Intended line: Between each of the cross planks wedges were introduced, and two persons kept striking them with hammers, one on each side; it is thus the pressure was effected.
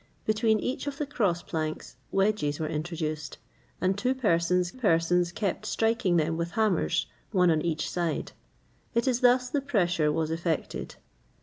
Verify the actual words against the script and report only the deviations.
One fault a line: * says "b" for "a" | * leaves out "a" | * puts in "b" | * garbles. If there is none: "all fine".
* puts in "persons"